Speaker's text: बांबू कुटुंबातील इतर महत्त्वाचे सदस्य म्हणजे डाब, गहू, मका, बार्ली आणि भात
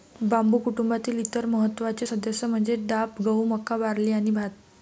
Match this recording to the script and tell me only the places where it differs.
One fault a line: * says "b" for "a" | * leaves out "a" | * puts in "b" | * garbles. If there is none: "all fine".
all fine